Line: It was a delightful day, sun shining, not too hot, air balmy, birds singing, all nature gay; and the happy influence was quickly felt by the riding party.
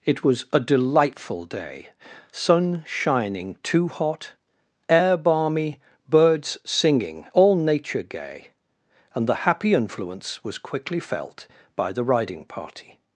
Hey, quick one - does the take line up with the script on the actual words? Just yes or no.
no